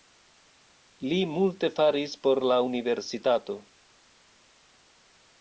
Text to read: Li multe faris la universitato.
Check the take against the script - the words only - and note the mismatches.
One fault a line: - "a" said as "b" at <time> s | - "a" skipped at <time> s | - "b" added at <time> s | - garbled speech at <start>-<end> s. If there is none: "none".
- "por" added at 2.2 s